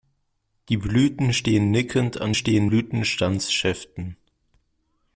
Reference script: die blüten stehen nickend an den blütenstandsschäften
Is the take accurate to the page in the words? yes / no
no